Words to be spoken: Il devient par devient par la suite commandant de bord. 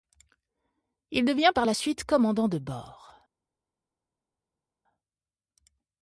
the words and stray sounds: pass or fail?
fail